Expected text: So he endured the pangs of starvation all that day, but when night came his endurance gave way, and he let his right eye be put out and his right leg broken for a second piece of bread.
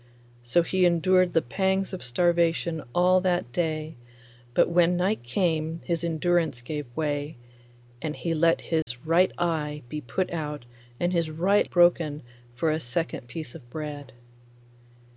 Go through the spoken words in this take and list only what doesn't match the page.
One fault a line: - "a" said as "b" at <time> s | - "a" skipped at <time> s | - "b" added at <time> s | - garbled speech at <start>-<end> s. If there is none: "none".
- "leg" skipped at 11.7 s